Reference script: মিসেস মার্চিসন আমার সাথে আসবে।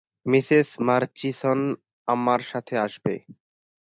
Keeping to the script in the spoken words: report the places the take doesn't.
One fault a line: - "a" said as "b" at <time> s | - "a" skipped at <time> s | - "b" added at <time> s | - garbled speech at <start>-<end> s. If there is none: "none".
none